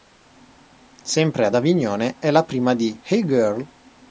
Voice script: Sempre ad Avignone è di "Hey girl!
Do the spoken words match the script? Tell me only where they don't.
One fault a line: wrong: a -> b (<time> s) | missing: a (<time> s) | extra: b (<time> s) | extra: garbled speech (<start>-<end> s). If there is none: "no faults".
extra: la prima (2.3 s)